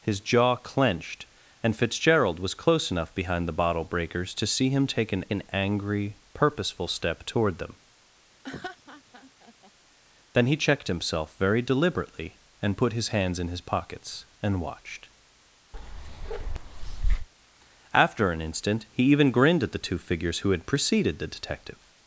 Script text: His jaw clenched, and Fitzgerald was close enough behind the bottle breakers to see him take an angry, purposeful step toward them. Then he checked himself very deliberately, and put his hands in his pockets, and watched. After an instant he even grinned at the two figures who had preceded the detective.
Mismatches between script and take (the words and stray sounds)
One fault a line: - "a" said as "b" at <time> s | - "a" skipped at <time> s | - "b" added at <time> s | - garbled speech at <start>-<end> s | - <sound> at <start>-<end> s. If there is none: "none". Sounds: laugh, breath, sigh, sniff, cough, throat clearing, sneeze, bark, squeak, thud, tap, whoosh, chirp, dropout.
- "an" added at 5.3 s
- laugh at 8.4-9.7 s
- bark at 15.7-17.3 s